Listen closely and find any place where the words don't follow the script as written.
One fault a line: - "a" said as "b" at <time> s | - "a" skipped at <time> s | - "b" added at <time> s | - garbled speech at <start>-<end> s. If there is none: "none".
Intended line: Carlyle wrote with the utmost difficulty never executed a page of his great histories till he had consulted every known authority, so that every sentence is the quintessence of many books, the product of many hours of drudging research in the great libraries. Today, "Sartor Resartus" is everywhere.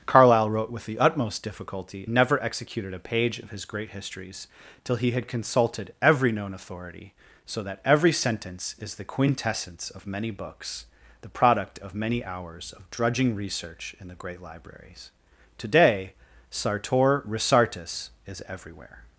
none